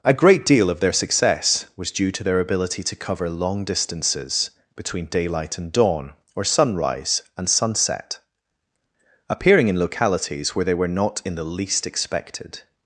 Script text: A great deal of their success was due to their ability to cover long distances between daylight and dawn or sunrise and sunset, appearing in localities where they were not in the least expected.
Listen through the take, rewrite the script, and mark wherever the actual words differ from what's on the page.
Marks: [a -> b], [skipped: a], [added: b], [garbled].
A great deal of their success was due to their ability to cover long distances between daylight and dawn or sunrise and sunset, appearing in localities where they were not in the least expected.